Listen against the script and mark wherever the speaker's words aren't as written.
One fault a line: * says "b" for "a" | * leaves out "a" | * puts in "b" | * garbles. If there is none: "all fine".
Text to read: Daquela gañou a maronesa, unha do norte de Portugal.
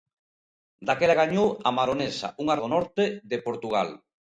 all fine